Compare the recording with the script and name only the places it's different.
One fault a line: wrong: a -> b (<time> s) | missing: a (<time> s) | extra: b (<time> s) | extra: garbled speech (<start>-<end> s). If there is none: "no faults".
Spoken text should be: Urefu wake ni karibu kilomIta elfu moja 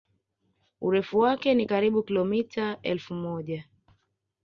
no faults